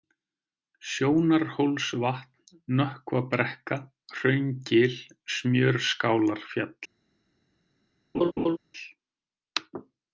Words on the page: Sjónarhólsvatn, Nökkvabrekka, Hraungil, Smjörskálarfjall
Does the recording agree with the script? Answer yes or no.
yes